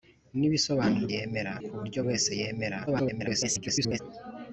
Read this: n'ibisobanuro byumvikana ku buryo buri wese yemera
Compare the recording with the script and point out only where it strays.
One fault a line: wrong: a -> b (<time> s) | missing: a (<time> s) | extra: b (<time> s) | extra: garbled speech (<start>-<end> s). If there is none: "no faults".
wrong: byumvikana -> yemera (1.1 s)
missing: buri (2.0 s)
extra: garbled speech (2.9-4.0 s)